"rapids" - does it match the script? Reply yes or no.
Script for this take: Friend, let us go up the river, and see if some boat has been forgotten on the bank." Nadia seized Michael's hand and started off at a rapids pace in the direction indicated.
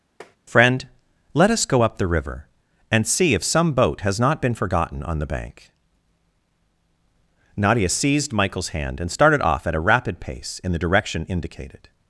no